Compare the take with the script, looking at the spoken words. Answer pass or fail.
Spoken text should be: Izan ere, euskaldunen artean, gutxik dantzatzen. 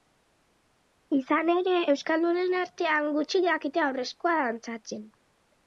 fail